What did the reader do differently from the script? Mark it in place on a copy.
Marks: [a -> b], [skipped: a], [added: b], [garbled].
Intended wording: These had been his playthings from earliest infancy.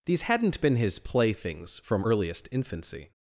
These [had -> hadn't] been his playthings from earliest infancy.